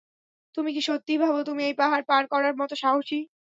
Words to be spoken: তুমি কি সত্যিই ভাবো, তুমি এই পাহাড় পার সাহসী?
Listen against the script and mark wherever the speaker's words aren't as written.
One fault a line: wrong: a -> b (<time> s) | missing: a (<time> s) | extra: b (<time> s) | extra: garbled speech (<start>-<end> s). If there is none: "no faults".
extra: করার মতো (2.3 s)